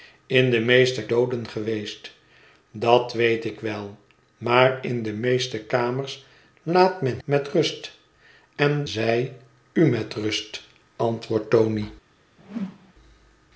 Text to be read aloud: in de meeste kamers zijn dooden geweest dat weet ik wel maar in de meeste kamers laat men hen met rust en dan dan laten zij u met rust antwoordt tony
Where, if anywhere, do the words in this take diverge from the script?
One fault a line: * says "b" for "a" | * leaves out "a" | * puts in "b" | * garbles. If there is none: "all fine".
* leaves out "kamers zijn"
* leaves out "hen"
* leaves out "dan dan laten"